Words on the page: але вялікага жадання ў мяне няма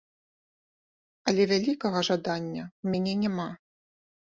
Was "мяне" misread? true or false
false